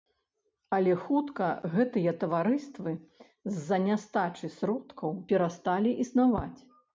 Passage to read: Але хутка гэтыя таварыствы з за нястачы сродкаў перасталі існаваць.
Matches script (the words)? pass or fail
pass